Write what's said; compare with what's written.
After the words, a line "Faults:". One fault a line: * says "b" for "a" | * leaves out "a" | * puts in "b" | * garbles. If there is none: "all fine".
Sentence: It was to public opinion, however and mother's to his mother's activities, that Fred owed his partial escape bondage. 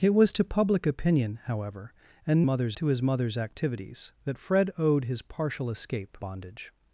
It was to public opinion, however and mother's to his mother's activities, that Fred owed his partial escape bondage.
Faults:
all fine